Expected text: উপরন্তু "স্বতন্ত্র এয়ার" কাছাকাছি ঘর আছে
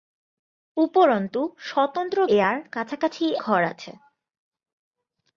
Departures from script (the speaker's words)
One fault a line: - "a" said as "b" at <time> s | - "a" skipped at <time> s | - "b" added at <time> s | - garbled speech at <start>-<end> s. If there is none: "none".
none